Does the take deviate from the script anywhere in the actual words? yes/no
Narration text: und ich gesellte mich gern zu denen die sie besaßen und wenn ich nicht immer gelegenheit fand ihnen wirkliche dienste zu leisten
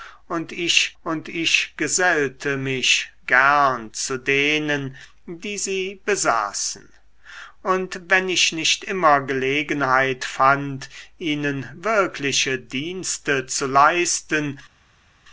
yes